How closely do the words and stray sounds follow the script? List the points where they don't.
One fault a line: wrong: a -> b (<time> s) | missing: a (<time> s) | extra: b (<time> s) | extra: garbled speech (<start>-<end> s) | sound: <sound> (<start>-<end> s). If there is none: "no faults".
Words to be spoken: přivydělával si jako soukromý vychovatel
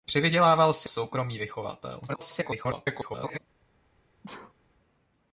missing: jako (0.9 s)
extra: garbled speech (2.1-3.4 s)
sound: sneeze (4.2-4.5 s)